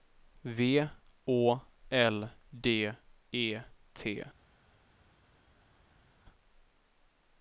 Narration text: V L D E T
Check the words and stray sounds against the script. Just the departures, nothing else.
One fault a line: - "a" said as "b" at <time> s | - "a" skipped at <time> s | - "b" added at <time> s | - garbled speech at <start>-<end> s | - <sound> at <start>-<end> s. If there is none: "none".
- "Å" added at 1.3 s